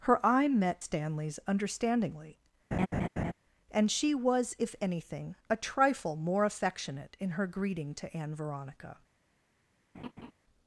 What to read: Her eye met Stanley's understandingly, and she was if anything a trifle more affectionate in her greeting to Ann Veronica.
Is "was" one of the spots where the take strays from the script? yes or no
no